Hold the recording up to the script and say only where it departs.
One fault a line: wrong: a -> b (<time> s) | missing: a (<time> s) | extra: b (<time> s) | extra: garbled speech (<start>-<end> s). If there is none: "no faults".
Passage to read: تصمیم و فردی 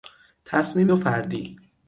no faults